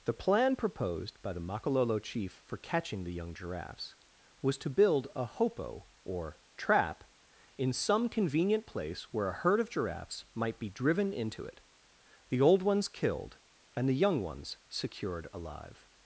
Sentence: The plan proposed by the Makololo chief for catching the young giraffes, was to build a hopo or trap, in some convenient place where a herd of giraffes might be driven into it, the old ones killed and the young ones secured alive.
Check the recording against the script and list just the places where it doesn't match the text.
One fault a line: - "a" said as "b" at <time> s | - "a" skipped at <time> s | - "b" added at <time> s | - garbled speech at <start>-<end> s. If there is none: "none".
none